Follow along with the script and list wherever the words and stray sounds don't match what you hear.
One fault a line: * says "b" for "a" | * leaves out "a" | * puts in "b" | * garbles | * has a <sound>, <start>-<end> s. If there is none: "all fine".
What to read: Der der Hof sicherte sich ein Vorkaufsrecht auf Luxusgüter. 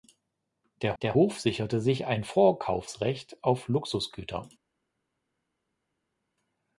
all fine